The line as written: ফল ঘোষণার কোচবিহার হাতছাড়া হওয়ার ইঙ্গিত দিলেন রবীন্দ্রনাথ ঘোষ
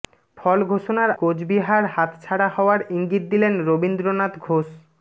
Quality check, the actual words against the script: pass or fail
pass